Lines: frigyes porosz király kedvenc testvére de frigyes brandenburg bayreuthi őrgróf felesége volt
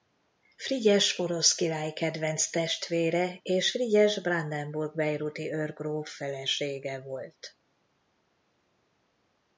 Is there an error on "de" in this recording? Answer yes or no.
yes